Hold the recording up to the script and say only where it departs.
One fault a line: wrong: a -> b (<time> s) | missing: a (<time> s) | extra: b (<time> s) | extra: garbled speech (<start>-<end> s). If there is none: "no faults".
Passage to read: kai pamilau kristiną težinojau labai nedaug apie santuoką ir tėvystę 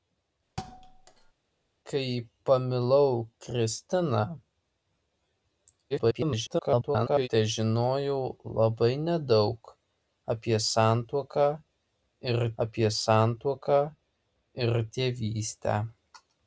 extra: garbled speech (5.9-7.3 s)
extra: apie santuoką ir (12.7 s)